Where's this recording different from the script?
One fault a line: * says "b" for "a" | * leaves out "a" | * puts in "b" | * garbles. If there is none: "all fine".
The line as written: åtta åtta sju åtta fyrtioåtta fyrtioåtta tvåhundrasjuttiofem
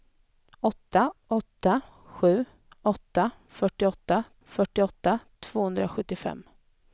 all fine